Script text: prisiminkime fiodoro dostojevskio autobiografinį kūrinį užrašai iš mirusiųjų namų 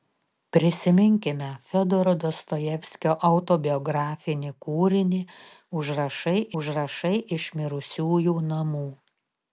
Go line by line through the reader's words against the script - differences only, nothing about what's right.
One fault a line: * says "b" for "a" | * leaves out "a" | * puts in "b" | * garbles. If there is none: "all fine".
* puts in "užrašai"